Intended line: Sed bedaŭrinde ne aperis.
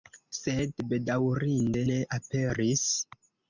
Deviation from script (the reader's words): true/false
false